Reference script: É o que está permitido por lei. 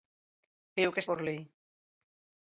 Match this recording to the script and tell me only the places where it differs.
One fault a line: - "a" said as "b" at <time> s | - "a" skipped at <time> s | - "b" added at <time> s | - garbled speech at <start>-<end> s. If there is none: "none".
- "está permitido" skipped at 1.0 s